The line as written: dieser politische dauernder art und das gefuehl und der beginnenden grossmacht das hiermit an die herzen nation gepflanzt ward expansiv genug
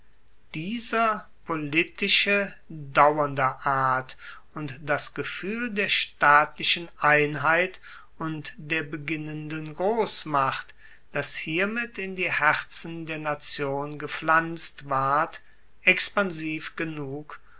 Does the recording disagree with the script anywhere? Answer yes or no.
yes